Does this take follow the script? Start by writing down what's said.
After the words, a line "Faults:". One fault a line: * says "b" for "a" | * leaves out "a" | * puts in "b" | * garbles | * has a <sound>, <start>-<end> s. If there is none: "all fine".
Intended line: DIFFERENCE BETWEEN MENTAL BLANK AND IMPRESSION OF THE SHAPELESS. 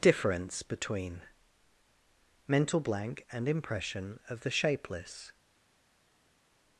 DIFFERENCE BETWEEN MENTAL BLANK AND IMPRESSION OF THE SHAPELESS.
Faults:
all fine